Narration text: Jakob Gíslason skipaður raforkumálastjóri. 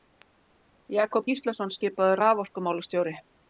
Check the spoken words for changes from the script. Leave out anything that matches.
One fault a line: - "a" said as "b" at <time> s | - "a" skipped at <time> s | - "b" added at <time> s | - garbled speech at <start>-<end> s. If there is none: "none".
none